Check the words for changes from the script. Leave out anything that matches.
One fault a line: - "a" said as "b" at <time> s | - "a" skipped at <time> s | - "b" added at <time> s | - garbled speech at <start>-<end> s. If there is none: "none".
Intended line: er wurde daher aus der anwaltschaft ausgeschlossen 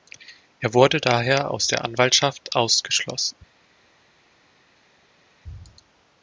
none